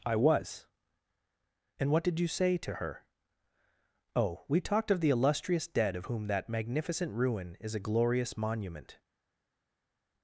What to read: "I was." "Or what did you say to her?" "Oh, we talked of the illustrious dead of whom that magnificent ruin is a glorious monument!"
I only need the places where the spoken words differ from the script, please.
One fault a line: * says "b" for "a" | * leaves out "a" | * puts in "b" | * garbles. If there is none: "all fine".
* says "And" for "Or"